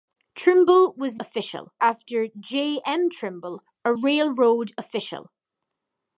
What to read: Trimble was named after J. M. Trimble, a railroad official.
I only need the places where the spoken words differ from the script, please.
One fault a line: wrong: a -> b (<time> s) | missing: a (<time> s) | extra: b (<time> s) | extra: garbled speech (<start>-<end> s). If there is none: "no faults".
wrong: named -> official (1.2 s)